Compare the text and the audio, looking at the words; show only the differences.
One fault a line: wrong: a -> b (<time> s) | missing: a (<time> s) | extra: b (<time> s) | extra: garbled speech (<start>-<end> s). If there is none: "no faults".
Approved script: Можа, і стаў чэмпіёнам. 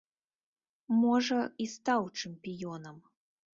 no faults